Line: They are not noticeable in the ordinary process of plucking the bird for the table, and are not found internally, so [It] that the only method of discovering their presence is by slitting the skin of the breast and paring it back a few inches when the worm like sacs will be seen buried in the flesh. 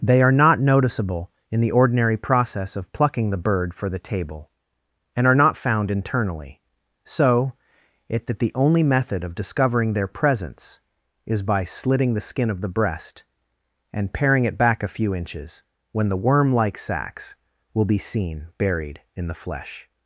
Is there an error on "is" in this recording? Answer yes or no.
no